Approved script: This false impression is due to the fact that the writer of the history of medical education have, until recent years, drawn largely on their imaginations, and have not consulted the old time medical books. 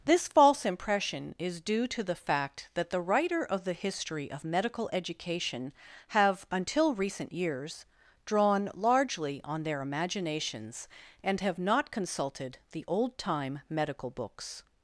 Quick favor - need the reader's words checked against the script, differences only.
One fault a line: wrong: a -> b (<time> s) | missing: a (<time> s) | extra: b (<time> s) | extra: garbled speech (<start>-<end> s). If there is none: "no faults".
no faults